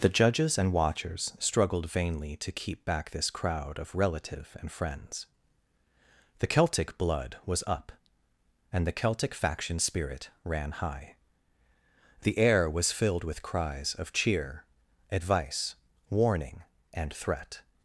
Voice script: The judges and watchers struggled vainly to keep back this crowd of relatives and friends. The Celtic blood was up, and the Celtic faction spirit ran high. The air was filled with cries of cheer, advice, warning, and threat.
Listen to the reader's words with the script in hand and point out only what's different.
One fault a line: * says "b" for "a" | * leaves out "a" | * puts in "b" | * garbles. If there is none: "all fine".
* says "relative" for "relatives"